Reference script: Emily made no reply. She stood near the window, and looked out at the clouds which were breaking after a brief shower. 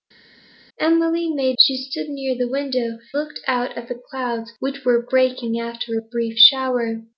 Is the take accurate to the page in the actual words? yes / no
no